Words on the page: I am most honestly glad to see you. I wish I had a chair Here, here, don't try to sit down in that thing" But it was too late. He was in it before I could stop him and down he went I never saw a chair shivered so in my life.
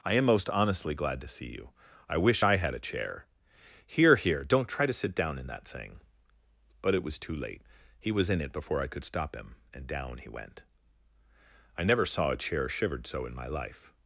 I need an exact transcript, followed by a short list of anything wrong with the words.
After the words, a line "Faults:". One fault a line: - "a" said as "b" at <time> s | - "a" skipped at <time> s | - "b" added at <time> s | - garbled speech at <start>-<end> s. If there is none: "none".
I am most honestly glad to see you. I wish I had a chair Here, here, don't try to sit down in that thing" But it was too late. He was in it before I could stop him and down he went I never saw a chair shivered so in my life.
Faults:
none